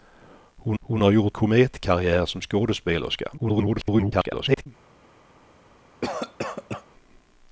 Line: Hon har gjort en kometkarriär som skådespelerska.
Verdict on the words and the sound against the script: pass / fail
fail